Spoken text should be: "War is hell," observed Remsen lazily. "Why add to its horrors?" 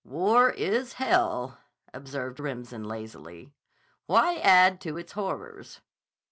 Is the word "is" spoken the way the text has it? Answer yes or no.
yes